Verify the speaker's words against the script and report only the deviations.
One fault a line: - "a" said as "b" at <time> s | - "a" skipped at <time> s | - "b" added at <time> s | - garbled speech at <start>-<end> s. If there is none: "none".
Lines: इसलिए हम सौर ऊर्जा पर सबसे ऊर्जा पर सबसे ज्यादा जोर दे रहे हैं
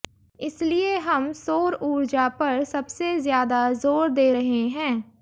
- "ऊर्जा पर सबसे" skipped at 3.2 s